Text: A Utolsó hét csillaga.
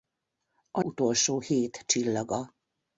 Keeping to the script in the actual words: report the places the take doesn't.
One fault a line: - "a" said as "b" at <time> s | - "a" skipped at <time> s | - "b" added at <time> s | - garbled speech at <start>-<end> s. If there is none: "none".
none